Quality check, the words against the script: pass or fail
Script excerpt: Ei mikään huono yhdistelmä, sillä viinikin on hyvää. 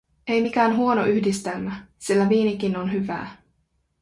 pass